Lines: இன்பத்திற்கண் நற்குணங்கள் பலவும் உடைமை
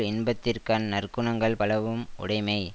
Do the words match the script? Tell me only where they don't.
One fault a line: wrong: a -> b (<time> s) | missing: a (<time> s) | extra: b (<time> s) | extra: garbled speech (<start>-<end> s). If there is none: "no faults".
no faults